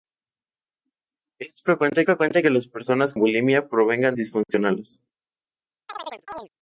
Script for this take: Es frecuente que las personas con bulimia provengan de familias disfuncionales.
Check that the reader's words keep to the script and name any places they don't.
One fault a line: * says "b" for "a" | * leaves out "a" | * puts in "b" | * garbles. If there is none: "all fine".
* puts in "frecuente"
* leaves out "con"
* leaves out "de familias"